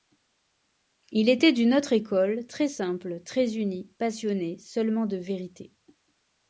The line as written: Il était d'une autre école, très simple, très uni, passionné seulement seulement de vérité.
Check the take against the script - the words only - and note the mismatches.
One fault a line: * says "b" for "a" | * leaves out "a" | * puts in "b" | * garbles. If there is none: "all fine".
* leaves out "seulement"